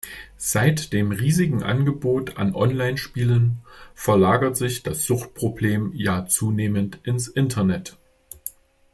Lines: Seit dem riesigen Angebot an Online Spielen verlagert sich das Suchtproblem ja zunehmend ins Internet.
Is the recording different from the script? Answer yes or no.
no